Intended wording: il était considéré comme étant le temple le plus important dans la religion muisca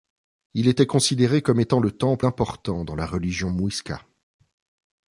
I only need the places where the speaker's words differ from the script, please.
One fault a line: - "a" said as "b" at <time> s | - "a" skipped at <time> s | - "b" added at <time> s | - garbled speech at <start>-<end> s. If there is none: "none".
- "le plus" skipped at 2.3 s